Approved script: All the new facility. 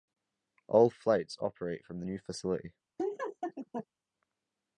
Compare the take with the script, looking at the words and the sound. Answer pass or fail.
fail